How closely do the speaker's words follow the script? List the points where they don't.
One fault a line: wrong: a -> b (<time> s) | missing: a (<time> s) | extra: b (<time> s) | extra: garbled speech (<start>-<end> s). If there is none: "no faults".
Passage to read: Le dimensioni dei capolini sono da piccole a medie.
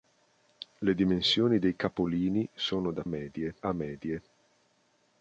wrong: piccole -> medie (3.0 s)